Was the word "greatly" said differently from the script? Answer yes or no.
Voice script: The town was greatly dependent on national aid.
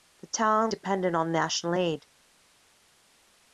yes